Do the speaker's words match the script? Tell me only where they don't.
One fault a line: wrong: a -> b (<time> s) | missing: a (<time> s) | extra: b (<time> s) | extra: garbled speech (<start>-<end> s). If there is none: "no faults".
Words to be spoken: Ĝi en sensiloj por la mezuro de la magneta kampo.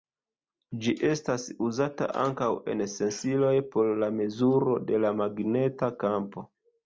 extra: estas uzata ankaŭ (1.1 s)